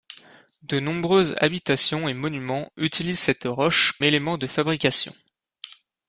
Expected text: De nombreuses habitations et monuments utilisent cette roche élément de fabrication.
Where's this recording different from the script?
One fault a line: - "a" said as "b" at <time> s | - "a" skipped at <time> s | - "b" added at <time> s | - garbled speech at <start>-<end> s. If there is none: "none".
none